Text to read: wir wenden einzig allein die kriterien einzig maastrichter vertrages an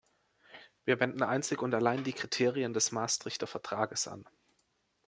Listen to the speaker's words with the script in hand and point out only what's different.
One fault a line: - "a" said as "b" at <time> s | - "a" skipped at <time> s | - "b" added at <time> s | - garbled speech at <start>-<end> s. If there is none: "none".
- "und" added at 1.6 s
- "einzig" said as "des" at 2.7 s